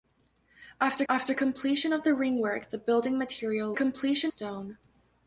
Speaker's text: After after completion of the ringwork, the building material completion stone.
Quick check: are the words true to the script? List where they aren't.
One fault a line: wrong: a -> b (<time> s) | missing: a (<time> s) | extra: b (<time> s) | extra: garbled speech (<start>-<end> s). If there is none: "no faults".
no faults